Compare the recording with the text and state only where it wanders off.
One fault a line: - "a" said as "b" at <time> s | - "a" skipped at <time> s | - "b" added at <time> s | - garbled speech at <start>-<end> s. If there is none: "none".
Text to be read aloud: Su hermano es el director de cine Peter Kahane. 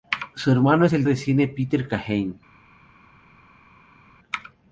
- "director" skipped at 1.0 s